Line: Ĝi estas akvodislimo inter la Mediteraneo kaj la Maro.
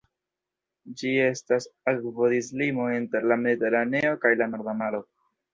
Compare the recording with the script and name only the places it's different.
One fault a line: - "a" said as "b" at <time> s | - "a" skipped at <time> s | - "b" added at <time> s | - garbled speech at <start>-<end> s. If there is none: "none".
- "Norda" added at 4.5 s